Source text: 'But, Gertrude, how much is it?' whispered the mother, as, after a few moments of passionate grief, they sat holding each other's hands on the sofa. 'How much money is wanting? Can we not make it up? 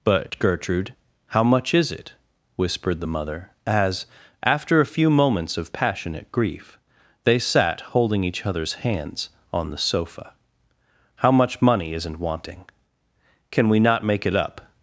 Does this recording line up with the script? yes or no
no